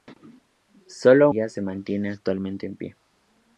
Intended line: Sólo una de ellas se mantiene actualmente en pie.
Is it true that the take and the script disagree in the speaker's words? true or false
true